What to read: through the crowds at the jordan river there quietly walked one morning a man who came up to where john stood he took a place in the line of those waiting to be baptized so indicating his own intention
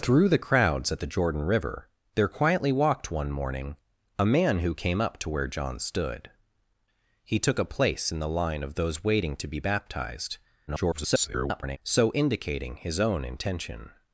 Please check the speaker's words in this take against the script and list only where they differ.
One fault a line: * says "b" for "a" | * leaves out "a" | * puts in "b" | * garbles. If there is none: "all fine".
* garbles